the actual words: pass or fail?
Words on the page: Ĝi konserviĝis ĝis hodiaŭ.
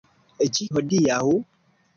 fail